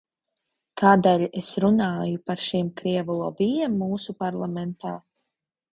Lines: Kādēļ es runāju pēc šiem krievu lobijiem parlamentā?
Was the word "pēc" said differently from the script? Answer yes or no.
yes